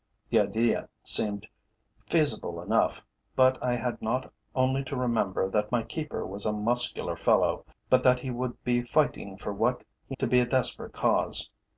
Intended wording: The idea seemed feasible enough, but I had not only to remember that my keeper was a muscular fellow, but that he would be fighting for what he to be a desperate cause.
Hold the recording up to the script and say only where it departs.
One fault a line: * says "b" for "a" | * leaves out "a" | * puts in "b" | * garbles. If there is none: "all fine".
all fine